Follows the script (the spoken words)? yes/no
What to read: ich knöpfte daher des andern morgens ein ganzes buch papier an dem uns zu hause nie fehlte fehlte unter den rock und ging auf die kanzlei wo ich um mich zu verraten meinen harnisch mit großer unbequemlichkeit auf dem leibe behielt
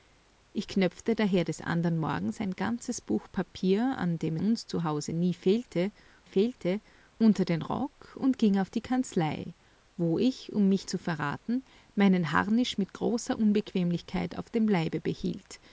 yes